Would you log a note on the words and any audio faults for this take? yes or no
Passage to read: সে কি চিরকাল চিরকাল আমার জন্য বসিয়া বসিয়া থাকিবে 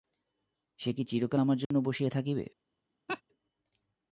yes